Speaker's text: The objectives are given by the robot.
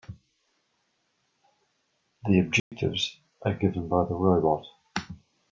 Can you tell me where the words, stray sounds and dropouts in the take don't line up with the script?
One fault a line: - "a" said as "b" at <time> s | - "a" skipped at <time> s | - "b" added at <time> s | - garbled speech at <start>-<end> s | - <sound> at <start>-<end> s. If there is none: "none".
- dropout at 2.6-2.7 s